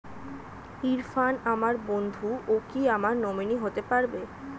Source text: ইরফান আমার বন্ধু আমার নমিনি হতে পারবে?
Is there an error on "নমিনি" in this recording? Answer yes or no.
no